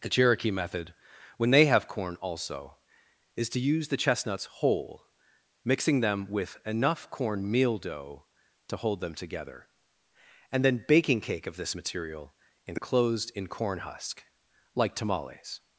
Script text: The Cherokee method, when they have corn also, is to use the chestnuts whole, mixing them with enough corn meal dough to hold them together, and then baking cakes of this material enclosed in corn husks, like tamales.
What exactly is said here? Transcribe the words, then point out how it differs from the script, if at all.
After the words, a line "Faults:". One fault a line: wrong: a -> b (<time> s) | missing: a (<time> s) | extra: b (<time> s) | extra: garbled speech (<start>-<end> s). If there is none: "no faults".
The Cherokee method, when they have corn also, is to use the chestnuts whole, mixing them with enough corn meal dough to hold them together, and then baking cake of this material enclosed in corn husk, like tamales.
Faults:
wrong: cakes -> cake (11.2 s)
wrong: husks -> husk (13.8 s)